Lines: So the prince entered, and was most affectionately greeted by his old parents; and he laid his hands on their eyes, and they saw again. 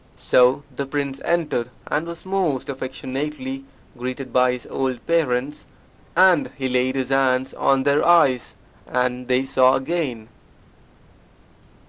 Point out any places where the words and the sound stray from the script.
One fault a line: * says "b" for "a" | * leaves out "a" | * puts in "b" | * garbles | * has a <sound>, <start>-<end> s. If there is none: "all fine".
all fine